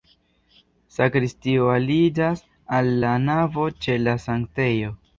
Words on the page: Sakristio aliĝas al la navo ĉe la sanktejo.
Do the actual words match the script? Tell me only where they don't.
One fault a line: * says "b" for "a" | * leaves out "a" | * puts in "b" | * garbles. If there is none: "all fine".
all fine